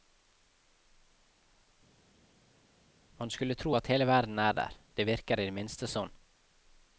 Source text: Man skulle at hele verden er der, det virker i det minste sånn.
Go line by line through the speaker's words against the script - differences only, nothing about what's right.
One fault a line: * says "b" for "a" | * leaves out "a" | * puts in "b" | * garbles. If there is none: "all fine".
* puts in "tro"